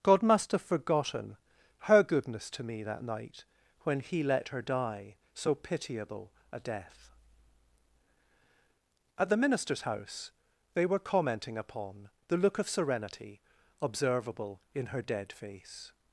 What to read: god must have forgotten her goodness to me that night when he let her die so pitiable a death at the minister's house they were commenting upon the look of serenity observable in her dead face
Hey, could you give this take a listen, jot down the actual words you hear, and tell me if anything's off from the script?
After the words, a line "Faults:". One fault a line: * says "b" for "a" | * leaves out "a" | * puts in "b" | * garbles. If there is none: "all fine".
god must have forgotten her goodness to me that night when he let her die so pitiable a death at the minister's house they were commenting upon the look of serenity observable in her dead face
Faults:
all fine